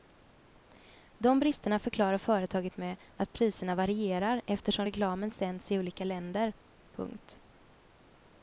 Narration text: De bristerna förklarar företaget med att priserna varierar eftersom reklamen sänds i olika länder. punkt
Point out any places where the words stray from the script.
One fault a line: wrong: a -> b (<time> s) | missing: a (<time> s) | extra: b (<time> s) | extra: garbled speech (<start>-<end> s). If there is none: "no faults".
no faults